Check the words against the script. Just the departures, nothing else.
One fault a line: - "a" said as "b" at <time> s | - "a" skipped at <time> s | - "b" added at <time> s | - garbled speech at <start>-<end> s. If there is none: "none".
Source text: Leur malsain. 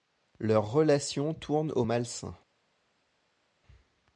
- "relation tourne au" added at 0.7 s